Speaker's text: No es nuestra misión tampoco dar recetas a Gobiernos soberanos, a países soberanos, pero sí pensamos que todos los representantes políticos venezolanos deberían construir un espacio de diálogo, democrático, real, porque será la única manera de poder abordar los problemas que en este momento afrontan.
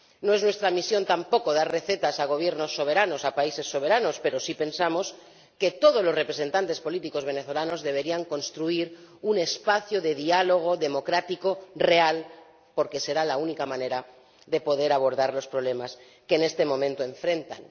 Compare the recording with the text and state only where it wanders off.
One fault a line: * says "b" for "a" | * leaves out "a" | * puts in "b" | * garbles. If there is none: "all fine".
all fine